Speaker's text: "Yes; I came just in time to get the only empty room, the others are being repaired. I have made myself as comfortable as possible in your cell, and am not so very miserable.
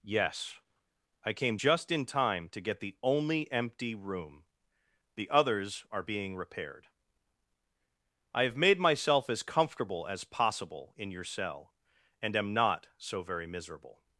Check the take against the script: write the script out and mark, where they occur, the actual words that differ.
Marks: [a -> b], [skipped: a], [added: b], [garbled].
"Yes; I came just in time to get the only empty room, the others are being repaired. I have made myself as comfortable as possible in your cell, and am not so very miserable.